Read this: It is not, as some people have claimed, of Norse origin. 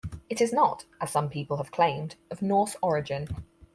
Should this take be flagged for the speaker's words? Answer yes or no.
no